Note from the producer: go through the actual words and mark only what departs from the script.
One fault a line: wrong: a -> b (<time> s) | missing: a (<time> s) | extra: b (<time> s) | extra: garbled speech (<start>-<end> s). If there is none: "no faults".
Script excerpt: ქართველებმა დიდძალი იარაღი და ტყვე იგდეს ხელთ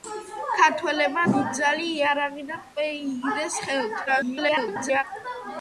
extra: garbled speech (4.1-5.0 s)